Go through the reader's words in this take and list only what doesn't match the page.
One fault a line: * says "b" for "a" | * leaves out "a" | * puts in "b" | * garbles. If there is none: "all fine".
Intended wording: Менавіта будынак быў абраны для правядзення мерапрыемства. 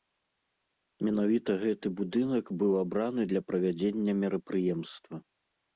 * puts in "гэты"